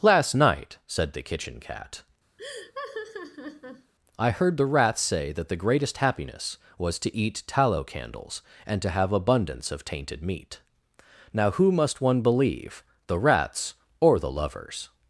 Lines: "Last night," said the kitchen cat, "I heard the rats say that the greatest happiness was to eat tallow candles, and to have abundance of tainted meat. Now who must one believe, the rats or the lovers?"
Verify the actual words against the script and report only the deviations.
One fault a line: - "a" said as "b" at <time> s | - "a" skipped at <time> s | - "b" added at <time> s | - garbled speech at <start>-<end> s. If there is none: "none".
none